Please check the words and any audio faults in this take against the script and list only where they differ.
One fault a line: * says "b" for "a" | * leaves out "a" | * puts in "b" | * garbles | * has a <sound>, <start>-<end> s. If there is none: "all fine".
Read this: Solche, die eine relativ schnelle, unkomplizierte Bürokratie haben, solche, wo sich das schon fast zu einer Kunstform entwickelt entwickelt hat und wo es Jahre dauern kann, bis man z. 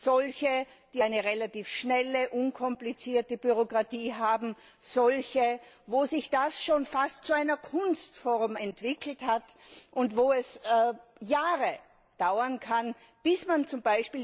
* leaves out "entwickelt"